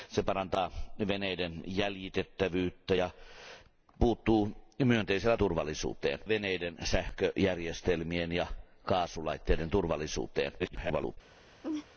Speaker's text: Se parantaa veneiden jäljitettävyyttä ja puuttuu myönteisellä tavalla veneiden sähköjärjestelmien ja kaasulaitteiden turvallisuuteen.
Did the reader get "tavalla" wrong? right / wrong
wrong